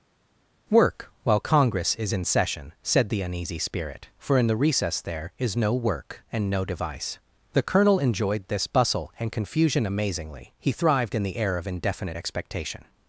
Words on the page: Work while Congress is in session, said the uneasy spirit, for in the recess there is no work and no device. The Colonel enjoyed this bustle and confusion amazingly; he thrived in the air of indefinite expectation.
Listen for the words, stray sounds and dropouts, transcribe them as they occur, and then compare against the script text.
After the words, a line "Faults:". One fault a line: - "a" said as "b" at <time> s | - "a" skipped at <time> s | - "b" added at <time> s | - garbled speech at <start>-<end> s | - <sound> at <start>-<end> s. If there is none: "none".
Work while Congress is in session, said the uneasy spirit, for in the recess there is no work and no device. The Colonel enjoyed this bustle and confusion amazingly; he thrived in the air of indefinite expectation.
Faults:
none